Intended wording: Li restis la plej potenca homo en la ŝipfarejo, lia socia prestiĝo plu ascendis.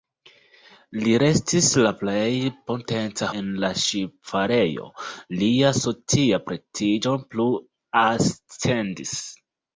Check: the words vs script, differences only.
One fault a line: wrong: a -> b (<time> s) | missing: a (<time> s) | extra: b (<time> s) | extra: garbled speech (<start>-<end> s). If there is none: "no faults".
missing: homo (3.3 s)